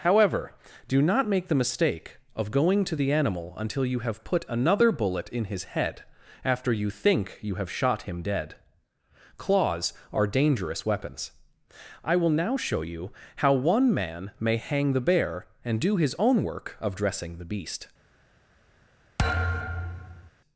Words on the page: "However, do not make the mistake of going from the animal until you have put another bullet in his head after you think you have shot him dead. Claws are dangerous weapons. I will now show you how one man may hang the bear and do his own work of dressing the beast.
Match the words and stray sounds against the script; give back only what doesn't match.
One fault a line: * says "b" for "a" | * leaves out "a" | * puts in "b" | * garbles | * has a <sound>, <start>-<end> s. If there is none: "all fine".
* says "to" for "from"
* has a thud, 19.2-20.3 s